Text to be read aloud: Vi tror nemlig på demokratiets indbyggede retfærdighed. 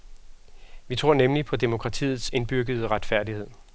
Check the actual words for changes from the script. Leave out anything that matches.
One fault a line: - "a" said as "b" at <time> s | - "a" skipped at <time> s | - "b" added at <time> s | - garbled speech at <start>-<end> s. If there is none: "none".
none